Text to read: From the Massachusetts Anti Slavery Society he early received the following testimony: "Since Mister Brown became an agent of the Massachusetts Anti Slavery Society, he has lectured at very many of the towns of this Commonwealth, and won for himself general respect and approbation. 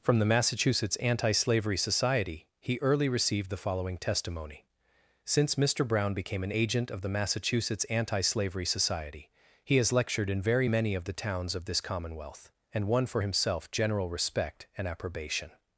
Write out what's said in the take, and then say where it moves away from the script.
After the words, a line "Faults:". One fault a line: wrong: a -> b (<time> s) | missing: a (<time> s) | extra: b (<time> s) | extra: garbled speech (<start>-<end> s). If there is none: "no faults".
From the Massachusetts Anti Slavery Society he early received the following testimony: "Since Mister Brown became an agent of the Massachusetts Anti Slavery Society, he has lectured in very many of the towns of this Commonwealth, and won for himself general respect and approbation.
Faults:
wrong: at -> in (10.3 s)